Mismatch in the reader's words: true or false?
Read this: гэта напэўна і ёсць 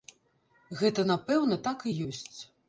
true